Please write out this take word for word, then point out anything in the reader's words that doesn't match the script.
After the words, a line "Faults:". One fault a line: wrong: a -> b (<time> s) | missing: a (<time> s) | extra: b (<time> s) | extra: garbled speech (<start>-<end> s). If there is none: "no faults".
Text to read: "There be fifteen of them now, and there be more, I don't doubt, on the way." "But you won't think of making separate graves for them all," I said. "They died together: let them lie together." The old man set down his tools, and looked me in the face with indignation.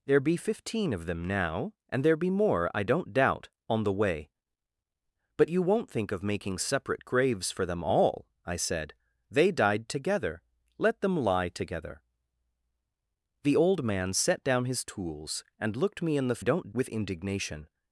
"There be fifteen of them now, and there be more, I don't doubt, on the way." "But you won't think of making separate graves for them all," I said. "They died together: let them lie together." The old man set down his tools, and looked me in the don't with indignation.
Faults:
wrong: face -> don't (16.4 s)